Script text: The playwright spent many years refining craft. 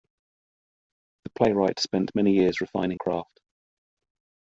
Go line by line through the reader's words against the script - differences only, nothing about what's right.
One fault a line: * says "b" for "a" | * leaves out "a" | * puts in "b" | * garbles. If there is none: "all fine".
all fine